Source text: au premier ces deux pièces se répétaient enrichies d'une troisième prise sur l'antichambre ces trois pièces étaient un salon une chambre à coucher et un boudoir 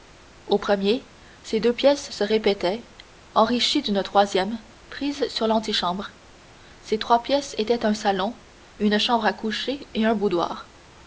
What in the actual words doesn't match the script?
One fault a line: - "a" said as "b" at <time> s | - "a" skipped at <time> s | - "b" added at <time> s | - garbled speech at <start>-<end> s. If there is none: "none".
none